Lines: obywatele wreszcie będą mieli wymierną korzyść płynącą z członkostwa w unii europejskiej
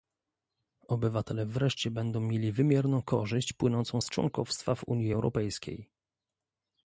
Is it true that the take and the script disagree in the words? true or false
false